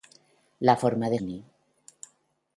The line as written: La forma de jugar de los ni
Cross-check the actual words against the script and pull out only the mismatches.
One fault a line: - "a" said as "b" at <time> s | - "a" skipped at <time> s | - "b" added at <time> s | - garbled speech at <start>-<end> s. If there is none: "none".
- "jugar de los" skipped at 1.2 s